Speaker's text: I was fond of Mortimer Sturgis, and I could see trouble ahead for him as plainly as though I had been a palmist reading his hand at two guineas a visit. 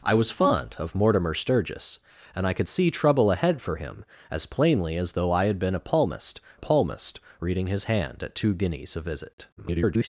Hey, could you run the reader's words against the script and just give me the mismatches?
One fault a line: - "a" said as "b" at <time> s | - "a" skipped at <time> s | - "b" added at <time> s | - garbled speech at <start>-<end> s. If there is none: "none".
- "palmist" added at 6.6 s
- garbled speech at 9.6-10.1 s